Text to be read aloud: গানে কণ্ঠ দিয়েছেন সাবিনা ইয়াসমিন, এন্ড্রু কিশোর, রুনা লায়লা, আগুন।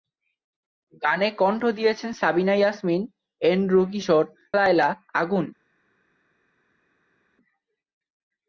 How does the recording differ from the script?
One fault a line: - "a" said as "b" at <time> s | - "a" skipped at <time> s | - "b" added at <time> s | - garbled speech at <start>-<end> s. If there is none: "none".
- "রুনা" skipped at 4.2 s